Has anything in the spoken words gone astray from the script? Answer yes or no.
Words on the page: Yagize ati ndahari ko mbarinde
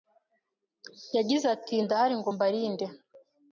yes